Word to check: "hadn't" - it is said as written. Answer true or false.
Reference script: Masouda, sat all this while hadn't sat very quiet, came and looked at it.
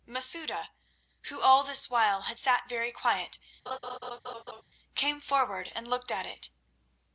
false